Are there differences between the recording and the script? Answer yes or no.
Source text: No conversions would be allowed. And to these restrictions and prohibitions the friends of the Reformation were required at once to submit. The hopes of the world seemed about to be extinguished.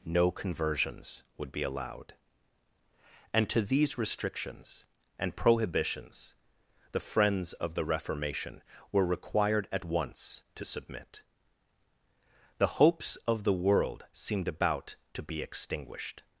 no